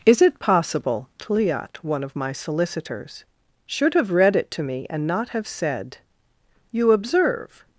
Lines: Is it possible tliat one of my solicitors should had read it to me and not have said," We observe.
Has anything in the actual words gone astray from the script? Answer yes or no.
yes